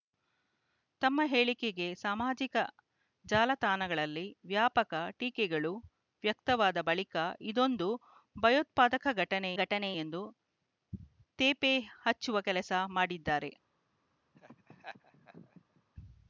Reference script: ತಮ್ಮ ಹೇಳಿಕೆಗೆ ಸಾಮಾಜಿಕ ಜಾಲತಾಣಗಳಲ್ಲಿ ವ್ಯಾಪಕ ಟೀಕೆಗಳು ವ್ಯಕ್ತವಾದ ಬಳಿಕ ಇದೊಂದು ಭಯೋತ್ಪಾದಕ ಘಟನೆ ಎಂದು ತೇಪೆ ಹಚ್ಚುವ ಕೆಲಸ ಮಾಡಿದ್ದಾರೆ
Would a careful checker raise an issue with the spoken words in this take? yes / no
yes